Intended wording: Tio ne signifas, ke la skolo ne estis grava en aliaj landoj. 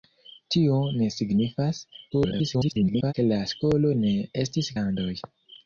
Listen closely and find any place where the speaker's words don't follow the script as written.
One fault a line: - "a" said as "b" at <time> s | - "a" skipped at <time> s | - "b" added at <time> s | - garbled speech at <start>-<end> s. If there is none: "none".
- garbled speech at 2.1-3.1 s
- "grava en aliaj" skipped at 4.7 s